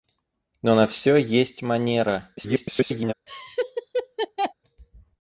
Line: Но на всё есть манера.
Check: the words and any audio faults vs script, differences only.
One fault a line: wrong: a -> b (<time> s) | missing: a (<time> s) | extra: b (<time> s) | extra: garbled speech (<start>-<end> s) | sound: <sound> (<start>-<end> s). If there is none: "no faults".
extra: garbled speech (2.4-3.1 s)
sound: laugh (3.3-4.5 s)